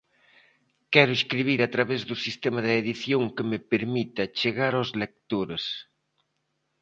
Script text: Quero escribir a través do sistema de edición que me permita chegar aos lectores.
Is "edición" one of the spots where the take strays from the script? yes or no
no